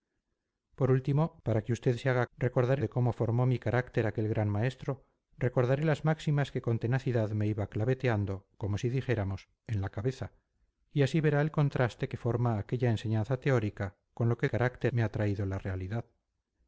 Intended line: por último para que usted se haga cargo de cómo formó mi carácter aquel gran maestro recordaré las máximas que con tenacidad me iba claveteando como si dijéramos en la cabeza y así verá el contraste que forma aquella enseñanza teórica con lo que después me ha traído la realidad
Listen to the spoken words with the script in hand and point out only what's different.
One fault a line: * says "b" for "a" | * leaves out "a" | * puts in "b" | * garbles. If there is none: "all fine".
* says "recordaré" for "cargo"
* says "carácter" for "después"